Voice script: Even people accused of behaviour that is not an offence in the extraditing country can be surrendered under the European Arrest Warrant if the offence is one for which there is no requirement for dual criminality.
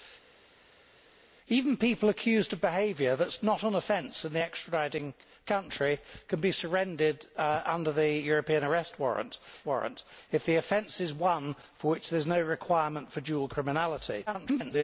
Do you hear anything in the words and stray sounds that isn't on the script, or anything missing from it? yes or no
yes